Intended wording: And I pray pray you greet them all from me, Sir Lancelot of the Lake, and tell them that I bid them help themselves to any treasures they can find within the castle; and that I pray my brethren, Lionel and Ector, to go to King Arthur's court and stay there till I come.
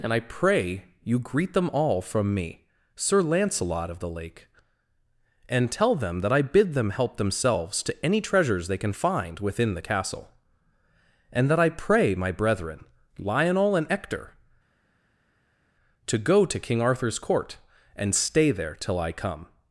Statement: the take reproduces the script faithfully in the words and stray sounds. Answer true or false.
false